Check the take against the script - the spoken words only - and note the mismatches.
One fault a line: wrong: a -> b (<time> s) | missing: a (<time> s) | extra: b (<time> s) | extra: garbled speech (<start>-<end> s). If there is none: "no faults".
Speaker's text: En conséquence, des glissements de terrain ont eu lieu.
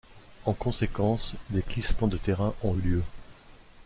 no faults